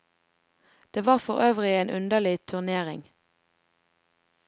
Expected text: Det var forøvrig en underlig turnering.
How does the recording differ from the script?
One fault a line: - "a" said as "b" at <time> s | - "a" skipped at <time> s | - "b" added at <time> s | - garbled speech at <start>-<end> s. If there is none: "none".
none